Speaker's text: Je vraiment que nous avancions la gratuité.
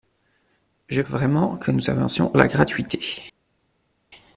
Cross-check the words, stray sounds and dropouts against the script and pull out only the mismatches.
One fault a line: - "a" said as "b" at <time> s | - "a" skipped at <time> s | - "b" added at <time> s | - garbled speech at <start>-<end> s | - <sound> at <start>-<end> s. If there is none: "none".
none